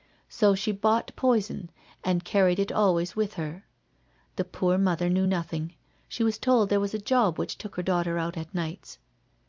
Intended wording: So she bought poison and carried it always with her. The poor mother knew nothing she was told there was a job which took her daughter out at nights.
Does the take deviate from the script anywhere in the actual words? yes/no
no